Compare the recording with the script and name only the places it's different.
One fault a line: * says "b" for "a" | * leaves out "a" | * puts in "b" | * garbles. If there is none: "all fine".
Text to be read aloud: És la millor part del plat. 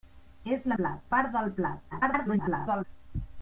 * says "plat" for "millor"
* garbles